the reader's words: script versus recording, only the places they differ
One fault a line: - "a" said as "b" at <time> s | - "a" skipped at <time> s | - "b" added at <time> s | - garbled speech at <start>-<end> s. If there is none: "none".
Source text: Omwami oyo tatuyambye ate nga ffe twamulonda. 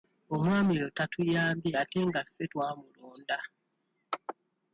none